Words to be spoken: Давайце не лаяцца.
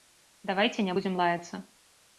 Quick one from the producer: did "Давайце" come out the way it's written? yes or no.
yes